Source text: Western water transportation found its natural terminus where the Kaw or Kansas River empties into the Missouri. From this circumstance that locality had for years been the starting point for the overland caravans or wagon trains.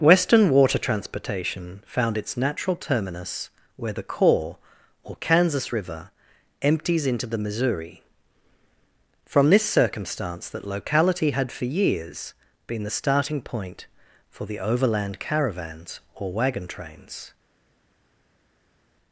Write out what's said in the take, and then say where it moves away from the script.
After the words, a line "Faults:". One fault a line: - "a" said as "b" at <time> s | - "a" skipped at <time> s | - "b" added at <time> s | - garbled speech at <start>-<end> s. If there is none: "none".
Western water transportation found its natural terminus where the Kaw or Kansas River empties into the Missouri. From this circumstance that locality had for years been the starting point for the overland caravans or wagon trains.
Faults:
none